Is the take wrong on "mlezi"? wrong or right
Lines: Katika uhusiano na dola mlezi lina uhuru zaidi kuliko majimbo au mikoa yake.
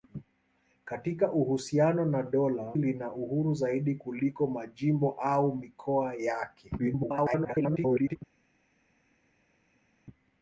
wrong